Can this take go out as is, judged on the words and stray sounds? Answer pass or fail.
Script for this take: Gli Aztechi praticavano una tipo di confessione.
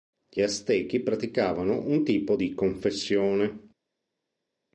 fail